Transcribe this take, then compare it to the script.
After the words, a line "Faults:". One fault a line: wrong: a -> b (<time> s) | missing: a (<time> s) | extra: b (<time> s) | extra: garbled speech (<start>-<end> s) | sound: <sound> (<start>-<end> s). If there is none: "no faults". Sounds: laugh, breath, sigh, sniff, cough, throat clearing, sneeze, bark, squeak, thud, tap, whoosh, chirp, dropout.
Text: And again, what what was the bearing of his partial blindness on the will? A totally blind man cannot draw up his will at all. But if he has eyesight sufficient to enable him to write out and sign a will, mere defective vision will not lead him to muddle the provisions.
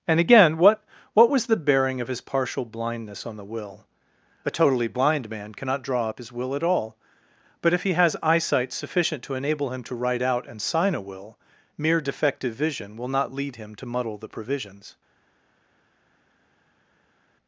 And again, what what was the bearing of his partial blindness on the will? A totally blind man cannot draw up his will at all. But if he has eyesight sufficient to enable him to write out and sign a will, mere defective vision will not lead him to muddle the provisions.
Faults:
no faults